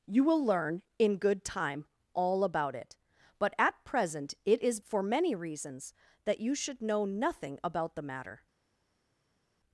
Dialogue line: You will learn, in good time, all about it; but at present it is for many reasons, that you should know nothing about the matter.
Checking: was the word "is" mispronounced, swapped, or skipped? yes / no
no